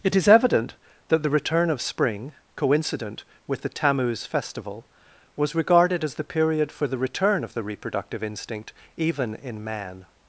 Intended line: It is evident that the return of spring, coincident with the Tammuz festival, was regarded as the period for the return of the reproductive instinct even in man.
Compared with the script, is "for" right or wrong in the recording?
right